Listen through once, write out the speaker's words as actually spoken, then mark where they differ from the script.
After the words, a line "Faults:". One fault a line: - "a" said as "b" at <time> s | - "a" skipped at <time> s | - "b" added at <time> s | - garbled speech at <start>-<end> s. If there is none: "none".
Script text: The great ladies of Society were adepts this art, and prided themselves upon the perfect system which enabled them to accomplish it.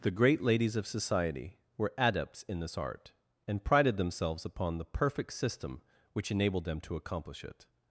The great ladies of Society were adepts in this art, and prided themselves upon the perfect system which enabled them to accomplish it.
Faults:
- "in" added at 2.5 s